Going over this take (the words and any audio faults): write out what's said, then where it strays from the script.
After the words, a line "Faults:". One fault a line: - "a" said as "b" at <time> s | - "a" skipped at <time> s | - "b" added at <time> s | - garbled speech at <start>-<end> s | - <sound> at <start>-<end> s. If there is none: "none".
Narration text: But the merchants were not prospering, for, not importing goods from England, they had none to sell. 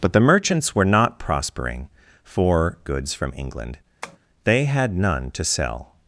But the merchants were not prospering, for, goods from England, they had none to sell.
Faults:
- "not importing" skipped at 2.8 s
- tap at 4.0-4.2 s